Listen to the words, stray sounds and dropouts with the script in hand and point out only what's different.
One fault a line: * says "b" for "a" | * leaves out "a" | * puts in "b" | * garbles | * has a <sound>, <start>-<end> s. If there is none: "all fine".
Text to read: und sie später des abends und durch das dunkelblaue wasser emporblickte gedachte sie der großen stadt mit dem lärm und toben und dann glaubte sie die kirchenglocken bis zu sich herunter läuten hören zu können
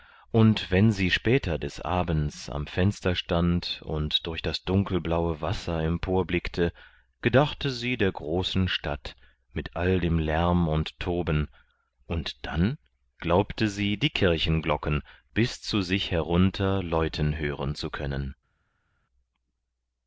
* puts in "wenn"
* puts in "am fenster stand"
* puts in "all"